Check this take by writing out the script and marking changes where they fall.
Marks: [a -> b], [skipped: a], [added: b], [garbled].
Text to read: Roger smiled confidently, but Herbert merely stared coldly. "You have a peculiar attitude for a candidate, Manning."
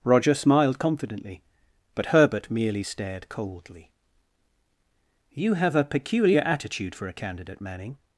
Roger smiled confidently, but Herbert merely stared coldly. "You have a peculiar attitude for a candidate, Manning."